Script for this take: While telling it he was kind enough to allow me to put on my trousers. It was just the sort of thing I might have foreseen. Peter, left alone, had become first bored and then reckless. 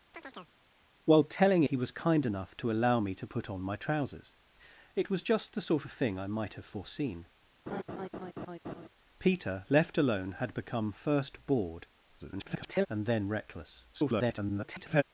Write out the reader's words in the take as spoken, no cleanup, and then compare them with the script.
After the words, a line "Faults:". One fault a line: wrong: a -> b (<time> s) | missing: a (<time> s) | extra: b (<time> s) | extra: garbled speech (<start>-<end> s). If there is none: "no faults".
While telling he was kind enough to allow me to put on my trousers. It was just the sort of thing I might have foreseen. Peter, left alone, had become first bored [garbled] and then reckless. [garbled]
Faults:
missing: it (1.6 s)
extra: garbled speech (12.2-12.9 s)
extra: garbled speech (13.9-15.0 s)